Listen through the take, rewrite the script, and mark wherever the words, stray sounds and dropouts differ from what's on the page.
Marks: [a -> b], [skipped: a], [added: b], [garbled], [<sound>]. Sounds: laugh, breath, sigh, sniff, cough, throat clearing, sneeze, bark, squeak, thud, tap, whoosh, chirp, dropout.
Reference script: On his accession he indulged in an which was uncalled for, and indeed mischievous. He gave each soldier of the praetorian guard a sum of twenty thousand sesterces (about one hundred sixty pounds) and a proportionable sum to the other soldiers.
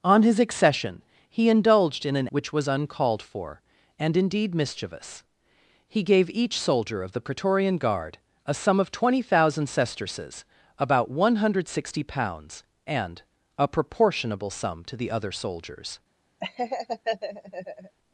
On his accession he indulged in an which was uncalled for, and indeed mischievous. He gave each soldier of the praetorian guard a sum of twenty thousand sesterces (about one hundred sixty pounds) and a proportionable sum to the other soldiers. [laugh]